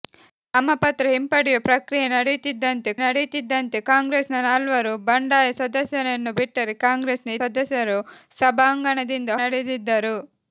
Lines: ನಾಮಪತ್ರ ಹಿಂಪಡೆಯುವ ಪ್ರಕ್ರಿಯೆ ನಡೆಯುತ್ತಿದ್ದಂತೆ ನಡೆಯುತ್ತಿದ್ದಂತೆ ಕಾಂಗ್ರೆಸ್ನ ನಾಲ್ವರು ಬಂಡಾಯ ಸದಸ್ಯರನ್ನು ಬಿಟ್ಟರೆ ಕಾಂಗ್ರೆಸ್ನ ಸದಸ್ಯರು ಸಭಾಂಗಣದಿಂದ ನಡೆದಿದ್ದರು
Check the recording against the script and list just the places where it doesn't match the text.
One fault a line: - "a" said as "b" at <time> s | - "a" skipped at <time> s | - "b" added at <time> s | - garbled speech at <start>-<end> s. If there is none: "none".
none